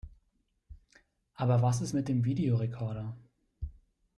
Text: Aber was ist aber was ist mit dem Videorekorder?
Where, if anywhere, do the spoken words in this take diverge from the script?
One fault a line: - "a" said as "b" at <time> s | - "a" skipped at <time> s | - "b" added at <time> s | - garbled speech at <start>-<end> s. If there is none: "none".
- "aber was ist" skipped at 1.9 s